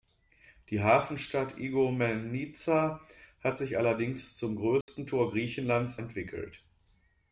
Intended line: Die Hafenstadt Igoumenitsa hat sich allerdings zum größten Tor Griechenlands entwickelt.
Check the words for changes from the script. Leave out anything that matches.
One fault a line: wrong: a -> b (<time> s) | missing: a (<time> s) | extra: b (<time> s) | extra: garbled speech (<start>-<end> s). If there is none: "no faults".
no faults